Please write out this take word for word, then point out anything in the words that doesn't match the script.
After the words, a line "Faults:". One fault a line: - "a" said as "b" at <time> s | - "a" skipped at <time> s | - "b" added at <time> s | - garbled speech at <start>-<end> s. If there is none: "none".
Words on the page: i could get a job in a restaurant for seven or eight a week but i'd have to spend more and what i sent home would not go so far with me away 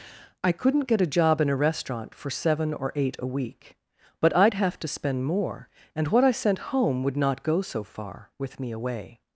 i couldn't get a job in a restaurant for seven or eight a week but i'd have to spend more and what i sent home would not go so far with me away
Faults:
- "could" said as "couldn't" at 0.5 s